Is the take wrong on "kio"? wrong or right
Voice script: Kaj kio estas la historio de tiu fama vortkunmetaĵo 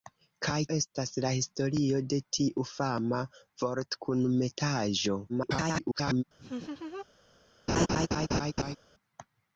wrong